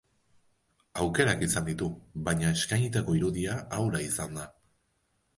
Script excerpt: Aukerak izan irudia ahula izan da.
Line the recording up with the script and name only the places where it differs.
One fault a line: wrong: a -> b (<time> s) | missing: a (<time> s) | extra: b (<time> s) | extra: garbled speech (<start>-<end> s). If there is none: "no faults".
extra: ditu baina eskainitako (1.7 s)